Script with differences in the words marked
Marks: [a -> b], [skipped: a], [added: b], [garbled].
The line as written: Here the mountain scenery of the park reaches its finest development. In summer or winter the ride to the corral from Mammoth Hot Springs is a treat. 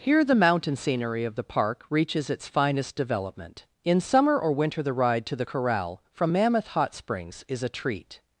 Here the mountain scenery of the park reaches its finest development. In summer or winter the ride to the corral from Mammoth Hot Springs is a treat.